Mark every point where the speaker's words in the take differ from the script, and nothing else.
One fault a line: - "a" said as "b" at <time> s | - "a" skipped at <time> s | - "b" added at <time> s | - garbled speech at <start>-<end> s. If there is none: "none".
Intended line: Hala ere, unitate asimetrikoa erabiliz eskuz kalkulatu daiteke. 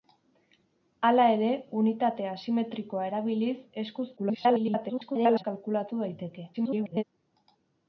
- garbled speech at 4.2-5.4 s
- garbled speech at 6.5-7.0 s